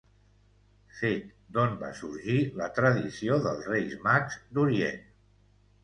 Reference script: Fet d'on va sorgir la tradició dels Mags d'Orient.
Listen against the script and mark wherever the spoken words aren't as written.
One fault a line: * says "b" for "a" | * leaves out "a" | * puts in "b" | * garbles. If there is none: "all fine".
* puts in "Reis"